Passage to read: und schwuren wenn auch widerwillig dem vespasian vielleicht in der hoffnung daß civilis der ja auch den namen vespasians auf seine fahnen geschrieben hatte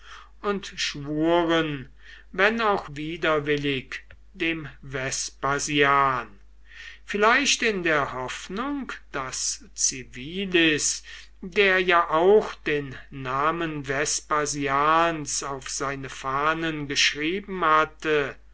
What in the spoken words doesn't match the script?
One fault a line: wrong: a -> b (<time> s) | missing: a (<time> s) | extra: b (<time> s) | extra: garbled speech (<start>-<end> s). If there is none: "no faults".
no faults